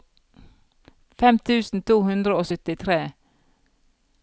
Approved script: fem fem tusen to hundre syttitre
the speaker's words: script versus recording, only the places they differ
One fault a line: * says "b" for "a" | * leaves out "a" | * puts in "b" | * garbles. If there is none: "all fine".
* leaves out "fem"
* puts in "og"